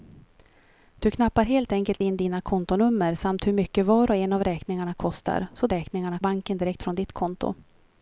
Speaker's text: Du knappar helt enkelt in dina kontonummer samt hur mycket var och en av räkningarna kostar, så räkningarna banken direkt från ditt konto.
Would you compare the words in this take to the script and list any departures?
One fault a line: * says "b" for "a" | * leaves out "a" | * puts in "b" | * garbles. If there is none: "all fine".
all fine